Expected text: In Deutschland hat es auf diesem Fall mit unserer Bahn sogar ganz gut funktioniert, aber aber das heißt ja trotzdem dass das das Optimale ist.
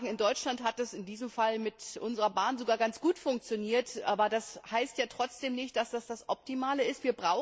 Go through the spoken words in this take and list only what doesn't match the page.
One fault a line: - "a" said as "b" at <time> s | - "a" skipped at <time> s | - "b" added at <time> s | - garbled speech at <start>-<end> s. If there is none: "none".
- "auf" said as "in" at 0.9 s
- "aber" skipped at 4.3 s
- "nicht" added at 5.6 s